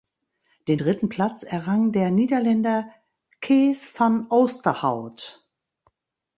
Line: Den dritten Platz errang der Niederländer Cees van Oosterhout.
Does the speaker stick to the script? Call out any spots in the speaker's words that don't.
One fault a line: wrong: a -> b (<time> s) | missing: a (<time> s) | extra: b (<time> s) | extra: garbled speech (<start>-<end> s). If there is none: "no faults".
no faults